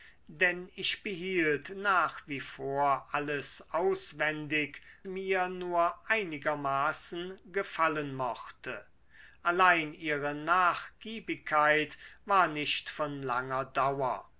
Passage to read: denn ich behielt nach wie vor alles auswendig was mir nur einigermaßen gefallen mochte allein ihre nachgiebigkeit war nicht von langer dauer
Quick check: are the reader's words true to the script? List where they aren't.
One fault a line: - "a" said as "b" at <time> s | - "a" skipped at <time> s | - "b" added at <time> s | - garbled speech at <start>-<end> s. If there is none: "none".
- "was" skipped at 4.8 s